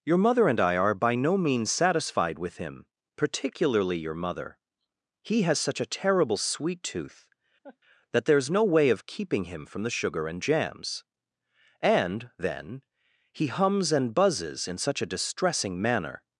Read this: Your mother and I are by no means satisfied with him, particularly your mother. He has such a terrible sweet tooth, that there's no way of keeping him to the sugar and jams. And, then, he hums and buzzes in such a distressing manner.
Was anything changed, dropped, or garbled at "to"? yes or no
yes